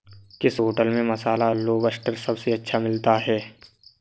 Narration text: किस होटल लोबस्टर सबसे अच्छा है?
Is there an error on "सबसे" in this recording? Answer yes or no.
no